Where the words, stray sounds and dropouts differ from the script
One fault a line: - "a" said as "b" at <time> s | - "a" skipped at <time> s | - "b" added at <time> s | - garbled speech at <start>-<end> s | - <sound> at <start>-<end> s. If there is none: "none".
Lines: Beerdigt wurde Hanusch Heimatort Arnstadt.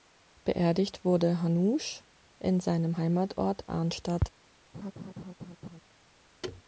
- "in seinem" added at 2.4 s
- laugh at 4.7-5.8 s
- thud at 6.4-6.6 s